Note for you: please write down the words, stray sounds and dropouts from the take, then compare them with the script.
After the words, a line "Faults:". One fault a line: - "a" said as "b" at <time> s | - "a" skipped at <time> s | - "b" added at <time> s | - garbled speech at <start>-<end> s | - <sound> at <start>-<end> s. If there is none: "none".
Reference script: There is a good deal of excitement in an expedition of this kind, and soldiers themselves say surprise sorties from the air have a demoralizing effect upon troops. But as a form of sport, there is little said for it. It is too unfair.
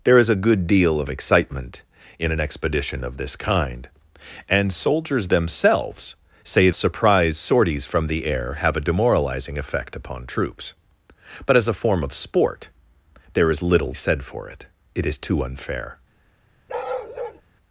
There is a good deal of excitement in an expedition of this kind, and soldiers themselves say surprise sorties from the air have a demoralizing effect upon troops. But as a form of sport, there is little said for it. It is too unfair.
Faults:
- bark at 16.7-17.4 s